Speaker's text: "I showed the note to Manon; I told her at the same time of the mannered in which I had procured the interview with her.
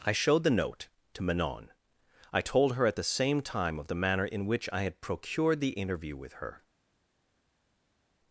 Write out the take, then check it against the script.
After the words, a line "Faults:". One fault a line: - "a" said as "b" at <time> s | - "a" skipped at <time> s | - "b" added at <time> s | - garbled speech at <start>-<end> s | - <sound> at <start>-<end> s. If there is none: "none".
"I showed the note to Manon; I told her at the same time of the manner in which I had procured the interview with her.
Faults:
- "mannered" said as "manner" at 4.0 s